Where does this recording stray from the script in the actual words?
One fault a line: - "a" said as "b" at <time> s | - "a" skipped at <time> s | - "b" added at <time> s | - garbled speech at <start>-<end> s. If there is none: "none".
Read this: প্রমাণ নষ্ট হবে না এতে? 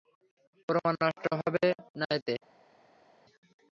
none